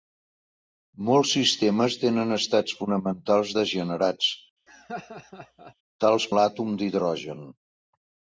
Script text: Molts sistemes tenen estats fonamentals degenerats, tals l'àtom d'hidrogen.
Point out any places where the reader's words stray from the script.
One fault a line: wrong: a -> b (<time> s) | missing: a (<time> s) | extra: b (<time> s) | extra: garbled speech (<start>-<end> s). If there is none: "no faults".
no faults